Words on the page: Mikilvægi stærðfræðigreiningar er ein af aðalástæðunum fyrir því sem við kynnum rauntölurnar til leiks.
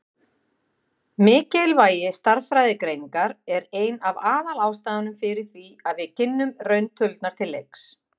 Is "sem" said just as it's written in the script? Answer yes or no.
no